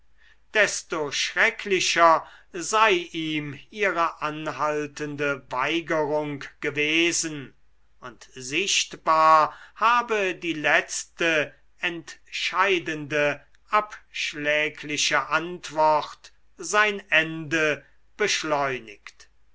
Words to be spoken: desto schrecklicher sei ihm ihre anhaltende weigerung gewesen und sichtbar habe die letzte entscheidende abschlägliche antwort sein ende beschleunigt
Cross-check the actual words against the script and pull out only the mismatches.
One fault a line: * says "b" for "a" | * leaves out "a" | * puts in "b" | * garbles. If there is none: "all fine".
all fine